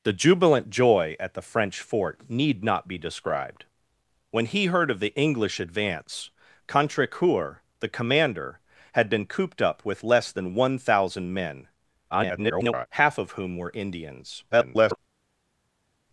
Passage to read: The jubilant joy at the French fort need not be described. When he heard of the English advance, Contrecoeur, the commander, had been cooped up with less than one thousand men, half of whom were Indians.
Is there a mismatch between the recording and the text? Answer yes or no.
yes